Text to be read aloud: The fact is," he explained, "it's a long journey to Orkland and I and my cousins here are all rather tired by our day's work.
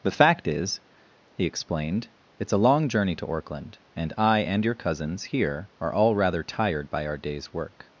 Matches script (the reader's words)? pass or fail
fail